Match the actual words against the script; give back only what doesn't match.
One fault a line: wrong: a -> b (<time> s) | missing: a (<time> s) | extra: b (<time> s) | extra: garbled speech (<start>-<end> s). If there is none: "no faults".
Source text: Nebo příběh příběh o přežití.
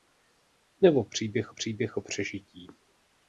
no faults